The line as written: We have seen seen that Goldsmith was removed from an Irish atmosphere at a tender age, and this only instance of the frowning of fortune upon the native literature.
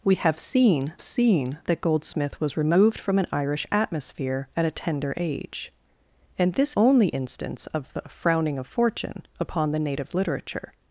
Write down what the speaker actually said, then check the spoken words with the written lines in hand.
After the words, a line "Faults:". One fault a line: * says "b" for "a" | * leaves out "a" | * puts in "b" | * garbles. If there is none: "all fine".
We have seen seen that Goldsmith was removed from an Irish atmosphere at a tender age, and this only instance of the frowning of fortune upon the native literature.
Faults:
all fine